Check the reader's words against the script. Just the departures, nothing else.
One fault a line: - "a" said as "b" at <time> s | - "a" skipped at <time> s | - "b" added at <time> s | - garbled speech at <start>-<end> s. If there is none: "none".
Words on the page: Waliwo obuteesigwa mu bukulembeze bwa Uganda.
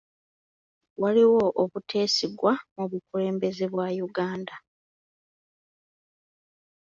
none